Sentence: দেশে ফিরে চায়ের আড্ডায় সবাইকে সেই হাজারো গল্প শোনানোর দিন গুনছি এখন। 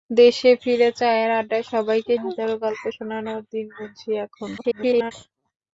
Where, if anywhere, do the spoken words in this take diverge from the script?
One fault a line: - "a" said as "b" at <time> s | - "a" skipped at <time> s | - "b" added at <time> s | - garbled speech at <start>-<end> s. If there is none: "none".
- "সেই" skipped at 2.1 s
- garbled speech at 4.6-5.1 s